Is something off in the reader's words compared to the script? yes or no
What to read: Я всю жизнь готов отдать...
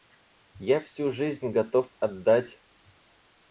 no